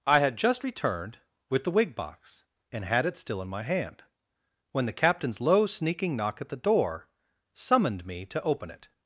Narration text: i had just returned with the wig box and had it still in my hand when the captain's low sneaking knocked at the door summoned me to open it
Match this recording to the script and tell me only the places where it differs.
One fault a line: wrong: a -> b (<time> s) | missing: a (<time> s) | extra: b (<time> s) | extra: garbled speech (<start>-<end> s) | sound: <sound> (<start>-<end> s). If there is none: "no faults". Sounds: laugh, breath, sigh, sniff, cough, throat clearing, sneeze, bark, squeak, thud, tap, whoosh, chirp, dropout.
wrong: knocked -> knock (6.1 s)